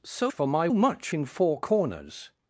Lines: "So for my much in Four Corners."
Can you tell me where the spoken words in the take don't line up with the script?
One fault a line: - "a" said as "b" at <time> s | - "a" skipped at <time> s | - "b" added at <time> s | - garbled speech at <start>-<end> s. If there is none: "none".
none